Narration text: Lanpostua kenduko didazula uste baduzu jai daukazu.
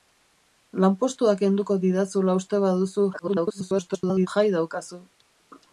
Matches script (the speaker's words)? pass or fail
fail